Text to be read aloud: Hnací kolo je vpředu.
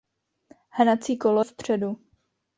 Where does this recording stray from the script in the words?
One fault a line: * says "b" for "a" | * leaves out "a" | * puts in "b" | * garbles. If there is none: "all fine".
* leaves out "je"